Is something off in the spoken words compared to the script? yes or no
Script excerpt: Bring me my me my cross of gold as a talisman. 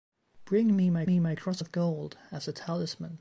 no